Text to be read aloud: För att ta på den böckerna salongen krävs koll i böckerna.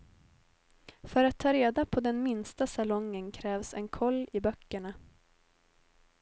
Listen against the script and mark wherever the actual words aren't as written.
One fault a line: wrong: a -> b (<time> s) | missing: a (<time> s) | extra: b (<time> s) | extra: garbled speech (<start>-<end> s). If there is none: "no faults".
extra: reda (1.5 s)
wrong: böckerna -> minsta (2.2 s)
extra: en (3.7 s)